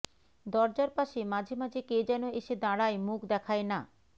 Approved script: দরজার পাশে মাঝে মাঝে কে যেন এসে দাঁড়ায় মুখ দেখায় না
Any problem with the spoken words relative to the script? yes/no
no